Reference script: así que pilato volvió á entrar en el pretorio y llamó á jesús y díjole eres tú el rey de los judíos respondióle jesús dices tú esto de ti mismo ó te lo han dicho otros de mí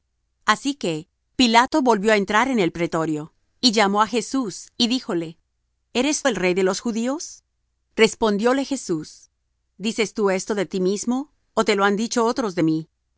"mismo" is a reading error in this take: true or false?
false